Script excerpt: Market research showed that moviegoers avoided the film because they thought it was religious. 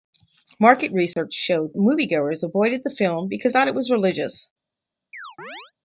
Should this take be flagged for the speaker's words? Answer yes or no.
yes